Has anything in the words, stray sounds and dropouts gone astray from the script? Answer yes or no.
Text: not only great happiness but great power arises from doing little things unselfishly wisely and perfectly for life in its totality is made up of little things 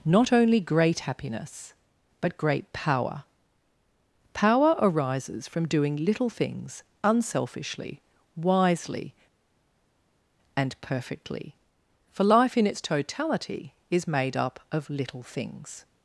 yes